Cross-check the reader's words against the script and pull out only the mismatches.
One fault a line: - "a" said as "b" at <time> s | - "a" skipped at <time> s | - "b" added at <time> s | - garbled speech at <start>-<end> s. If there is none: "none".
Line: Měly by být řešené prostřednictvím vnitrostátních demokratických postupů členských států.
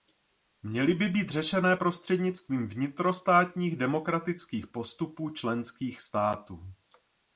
none